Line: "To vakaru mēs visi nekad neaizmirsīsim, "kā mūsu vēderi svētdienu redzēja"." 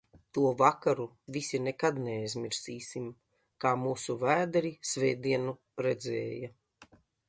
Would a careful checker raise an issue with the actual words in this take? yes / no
yes